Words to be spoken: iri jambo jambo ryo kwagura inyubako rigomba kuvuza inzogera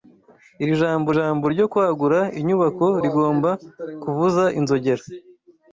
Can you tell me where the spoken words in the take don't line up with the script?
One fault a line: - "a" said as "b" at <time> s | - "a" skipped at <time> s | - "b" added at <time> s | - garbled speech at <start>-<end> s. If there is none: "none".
none